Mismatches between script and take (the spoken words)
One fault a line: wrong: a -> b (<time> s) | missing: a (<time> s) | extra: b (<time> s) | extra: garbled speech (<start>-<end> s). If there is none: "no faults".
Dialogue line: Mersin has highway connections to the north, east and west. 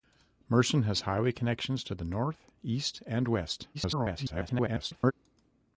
extra: garbled speech (3.7-5.1 s)